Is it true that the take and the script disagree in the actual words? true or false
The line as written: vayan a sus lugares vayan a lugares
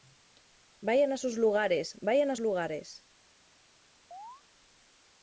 false